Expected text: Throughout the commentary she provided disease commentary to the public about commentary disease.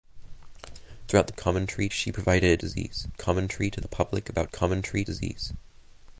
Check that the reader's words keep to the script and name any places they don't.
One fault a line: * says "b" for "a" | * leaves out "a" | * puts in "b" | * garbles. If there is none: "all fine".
all fine